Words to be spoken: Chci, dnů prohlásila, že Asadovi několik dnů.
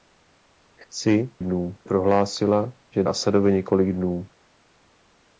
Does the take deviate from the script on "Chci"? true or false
false